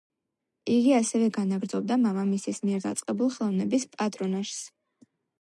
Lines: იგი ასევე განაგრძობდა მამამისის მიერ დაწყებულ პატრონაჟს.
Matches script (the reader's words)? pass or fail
fail